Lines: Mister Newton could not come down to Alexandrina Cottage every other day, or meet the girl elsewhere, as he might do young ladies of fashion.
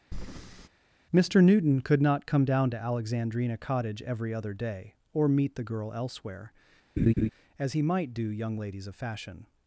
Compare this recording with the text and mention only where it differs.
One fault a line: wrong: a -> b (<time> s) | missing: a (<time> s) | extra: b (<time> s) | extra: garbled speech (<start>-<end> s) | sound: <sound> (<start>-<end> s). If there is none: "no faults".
sound: breath (0.1-0.7 s)
sound: laugh (7.0-7.3 s)